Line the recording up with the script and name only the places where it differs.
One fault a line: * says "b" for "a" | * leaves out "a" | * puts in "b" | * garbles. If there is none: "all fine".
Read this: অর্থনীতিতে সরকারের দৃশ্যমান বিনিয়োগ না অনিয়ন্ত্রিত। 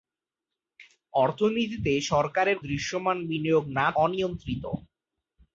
all fine